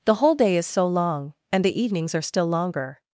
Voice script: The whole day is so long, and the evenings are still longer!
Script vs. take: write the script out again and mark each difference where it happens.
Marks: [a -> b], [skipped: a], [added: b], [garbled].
The whole day is so long, and the evenings are still longer!